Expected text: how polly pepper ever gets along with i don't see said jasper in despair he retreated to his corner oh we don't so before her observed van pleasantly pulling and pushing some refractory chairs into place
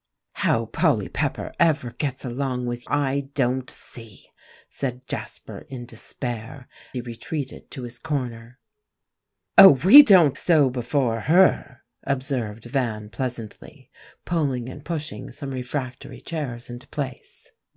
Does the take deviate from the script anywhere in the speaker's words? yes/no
no